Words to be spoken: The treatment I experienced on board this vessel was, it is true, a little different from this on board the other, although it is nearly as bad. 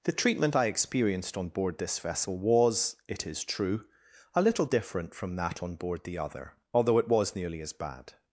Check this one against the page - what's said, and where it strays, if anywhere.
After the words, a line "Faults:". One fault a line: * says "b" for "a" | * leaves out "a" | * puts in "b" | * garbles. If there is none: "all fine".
The treatment I experienced on board this vessel was, it is true, a little different from that on board the other, although it was nearly as bad.
Faults:
* says "that" for "this"
* says "was" for "is"